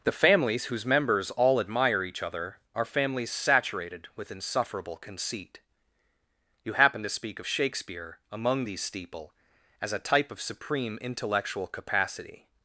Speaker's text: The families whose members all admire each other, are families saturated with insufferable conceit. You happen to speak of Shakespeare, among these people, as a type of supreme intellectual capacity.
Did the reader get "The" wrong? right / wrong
right